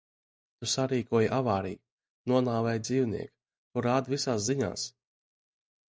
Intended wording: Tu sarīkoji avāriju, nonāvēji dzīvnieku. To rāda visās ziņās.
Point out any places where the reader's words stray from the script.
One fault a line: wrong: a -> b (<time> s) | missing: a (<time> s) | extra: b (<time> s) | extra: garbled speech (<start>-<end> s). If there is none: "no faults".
no faults